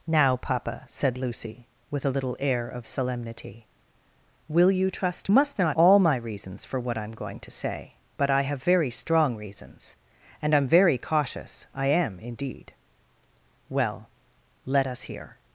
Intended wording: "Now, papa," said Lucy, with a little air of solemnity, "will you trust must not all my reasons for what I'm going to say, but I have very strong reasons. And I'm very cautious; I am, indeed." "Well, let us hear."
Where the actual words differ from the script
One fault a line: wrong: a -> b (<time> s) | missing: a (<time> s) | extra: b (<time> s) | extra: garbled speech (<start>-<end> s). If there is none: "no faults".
no faults